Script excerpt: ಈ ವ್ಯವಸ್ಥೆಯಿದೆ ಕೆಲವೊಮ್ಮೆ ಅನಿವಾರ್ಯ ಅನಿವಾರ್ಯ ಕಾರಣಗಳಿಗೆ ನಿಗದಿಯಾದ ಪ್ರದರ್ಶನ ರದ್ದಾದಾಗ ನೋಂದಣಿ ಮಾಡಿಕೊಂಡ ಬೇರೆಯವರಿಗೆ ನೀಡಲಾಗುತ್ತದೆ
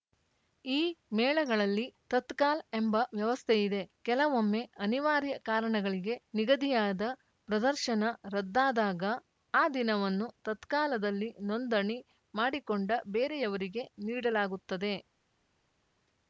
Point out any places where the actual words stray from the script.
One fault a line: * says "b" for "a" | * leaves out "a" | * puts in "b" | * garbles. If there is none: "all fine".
* puts in "ಮೇಳಗಳಲ್ಲಿ ತತ್ಕಾಲ್ ಎಂಬ"
* leaves out "ಅನಿವಾರ್ಯ"
* puts in "ಆ ದಿನವನ್ನು ತತ್ಕಾಲದಲ್ಲಿ"